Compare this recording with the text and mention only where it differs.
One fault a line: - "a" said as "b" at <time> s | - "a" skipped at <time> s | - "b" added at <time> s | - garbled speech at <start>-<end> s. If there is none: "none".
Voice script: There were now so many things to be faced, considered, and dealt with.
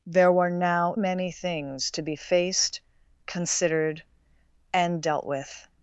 - "so" skipped at 0.9 s